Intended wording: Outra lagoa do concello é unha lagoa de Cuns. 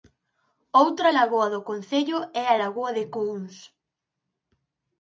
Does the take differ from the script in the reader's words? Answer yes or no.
yes